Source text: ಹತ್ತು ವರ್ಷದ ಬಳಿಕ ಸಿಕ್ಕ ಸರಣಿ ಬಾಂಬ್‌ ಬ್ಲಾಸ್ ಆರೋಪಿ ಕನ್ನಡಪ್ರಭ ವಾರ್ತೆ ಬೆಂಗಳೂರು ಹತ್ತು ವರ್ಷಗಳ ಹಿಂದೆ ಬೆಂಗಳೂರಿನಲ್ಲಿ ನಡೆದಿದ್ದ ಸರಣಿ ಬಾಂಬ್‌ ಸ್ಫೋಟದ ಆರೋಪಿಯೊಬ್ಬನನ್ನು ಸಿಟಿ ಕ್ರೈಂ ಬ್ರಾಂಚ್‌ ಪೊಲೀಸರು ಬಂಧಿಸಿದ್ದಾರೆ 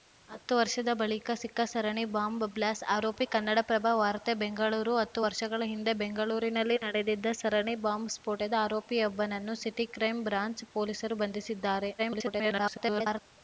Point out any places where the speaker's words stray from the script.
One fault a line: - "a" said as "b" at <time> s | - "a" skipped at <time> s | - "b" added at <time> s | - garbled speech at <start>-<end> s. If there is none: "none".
- garbled speech at 12.0-13.2 s